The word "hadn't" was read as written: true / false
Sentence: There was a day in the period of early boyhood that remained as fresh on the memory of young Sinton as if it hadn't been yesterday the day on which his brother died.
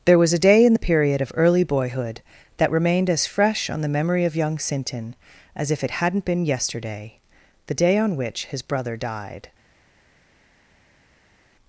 true